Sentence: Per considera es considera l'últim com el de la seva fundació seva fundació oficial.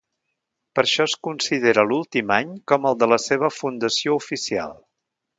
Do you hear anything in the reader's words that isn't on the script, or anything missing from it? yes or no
yes